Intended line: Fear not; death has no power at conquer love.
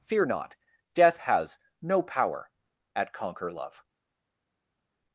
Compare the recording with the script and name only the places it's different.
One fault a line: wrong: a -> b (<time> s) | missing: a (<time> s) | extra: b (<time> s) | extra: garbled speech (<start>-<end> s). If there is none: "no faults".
no faults